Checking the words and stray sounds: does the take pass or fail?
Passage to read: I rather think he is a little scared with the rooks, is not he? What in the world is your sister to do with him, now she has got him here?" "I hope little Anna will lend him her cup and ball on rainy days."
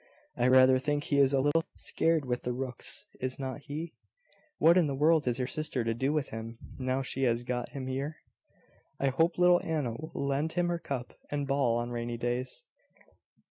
fail